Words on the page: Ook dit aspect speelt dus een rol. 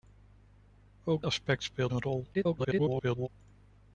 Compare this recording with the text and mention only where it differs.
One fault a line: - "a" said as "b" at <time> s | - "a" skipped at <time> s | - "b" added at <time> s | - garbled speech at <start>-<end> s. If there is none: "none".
- "dit" skipped at 1.2 s
- "dus" skipped at 1.9 s
- garbled speech at 2.3-3.3 s